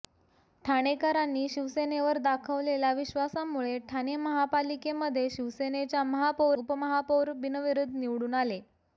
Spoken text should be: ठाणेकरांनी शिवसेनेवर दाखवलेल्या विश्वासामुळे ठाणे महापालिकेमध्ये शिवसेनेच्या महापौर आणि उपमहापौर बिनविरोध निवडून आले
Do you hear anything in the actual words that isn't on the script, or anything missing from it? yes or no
yes